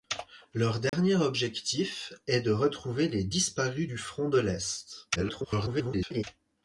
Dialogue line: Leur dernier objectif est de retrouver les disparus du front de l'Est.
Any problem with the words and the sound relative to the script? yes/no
yes